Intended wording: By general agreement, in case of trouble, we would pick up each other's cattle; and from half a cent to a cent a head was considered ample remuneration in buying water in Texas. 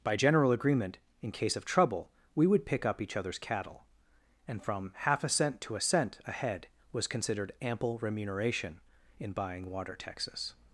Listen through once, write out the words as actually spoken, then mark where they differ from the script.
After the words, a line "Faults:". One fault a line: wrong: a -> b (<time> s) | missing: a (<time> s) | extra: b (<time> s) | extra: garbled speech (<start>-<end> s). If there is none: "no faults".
By general agreement, in case of trouble, we would pick up each other's cattle; and from half a cent to a cent a head was considered ample remuneration in buying water Texas.
Faults:
missing: in (10.0 s)